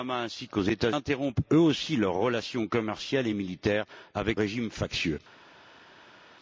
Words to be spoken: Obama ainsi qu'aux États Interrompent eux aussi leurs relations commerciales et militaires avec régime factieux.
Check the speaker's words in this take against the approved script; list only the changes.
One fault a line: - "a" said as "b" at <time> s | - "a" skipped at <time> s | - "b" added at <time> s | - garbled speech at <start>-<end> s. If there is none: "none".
none